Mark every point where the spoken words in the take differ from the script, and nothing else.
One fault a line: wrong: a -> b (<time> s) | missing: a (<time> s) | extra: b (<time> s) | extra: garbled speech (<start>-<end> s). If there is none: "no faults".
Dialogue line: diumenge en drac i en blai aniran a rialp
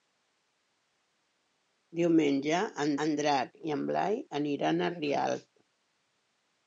extra: en (3.1 s)